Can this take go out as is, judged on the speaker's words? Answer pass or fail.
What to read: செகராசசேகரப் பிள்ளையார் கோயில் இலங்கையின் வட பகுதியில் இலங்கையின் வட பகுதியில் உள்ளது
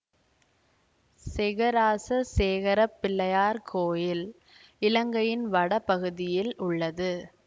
fail